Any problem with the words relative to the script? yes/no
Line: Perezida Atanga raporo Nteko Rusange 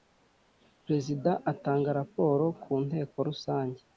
yes